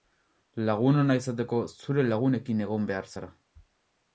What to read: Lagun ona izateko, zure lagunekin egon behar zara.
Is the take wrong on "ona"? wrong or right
right